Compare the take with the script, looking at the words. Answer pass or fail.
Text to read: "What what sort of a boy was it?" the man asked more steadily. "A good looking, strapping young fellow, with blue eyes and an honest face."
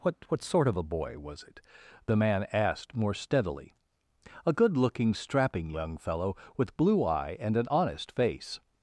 fail